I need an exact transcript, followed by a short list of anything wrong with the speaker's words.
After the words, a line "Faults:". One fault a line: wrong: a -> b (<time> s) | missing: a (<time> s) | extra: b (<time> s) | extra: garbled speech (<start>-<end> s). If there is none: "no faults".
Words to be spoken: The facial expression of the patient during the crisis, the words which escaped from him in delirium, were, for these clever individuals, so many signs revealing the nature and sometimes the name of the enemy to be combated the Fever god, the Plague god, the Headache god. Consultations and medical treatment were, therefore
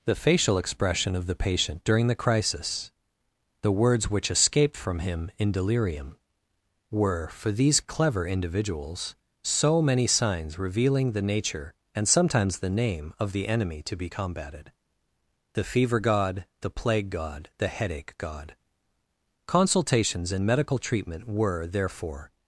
The facial expression of the patient during the crisis, the words which escaped from him in delirium, were, for these clever individuals, so many signs revealing the nature and sometimes the name of the enemy to be combated the Fever god, the Plague god, the Headache god. Consultations and medical treatment were, therefore
Faults:
no faults